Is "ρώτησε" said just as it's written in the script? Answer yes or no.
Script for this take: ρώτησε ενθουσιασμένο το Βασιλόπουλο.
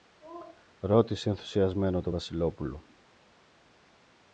yes